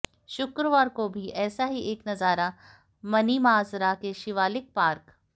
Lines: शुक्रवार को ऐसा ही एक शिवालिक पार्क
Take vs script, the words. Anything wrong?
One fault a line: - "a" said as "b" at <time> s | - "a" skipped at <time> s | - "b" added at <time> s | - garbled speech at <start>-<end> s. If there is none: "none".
- "भी" added at 1.1 s
- "नजारा मनीमाजरा के" added at 2.1 s